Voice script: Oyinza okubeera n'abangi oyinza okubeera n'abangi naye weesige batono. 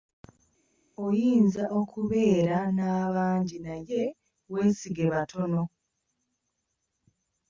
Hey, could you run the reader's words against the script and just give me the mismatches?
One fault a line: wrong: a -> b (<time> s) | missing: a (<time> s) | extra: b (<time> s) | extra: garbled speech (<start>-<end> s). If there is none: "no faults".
missing: oyinza okubeera n'abangi (3.6 s)